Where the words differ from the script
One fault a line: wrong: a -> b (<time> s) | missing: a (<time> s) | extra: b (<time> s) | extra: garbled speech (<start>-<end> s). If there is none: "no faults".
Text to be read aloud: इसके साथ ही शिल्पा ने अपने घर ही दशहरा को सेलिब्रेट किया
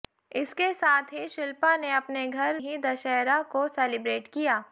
no faults